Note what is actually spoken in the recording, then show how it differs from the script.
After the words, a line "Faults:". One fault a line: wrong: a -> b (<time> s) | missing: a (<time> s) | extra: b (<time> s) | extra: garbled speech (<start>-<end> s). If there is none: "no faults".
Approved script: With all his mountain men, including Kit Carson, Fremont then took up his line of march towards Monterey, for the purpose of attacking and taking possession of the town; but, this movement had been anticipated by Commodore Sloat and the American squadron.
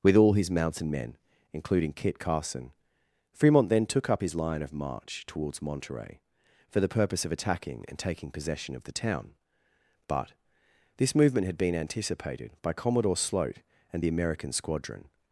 With all his mountain men, including Kit Carson, Fremont then took up his line of march towards Monterey, for the purpose of attacking and taking possession of the town; but, this movement had been anticipated by Commodore Sloat and the American squadron.
Faults:
no faults